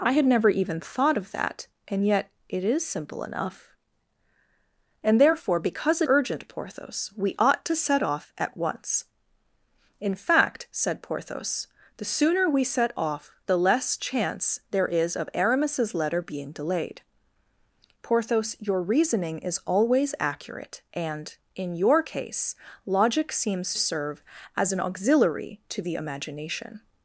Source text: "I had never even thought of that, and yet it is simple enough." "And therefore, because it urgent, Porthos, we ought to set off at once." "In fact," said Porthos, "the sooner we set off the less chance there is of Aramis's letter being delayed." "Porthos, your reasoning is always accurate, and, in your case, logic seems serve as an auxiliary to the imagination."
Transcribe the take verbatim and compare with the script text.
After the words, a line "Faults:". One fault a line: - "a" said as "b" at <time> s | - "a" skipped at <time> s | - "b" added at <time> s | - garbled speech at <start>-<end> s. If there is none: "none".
"I had never even thought of that, and yet it is simple enough." "And therefore, because it urgent, Porthos, we ought to set off at once." "In fact," said Porthos, "the sooner we set off the less chance there is of Aramis's letter being delayed." "Porthos, your reasoning is always accurate, and, in your case, logic seems serve as an auxiliary to the imagination."
Faults:
none